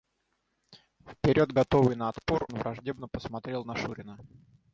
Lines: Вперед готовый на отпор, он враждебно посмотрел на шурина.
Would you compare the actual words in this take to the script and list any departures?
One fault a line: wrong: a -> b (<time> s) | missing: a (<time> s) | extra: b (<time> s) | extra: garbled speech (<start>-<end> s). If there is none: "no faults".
missing: он (2.5 s)